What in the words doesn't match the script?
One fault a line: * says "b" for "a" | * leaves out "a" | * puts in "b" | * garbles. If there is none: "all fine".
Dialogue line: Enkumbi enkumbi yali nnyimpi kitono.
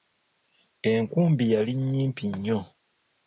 * leaves out "enkumbi"
* says "nnyo" for "kitono"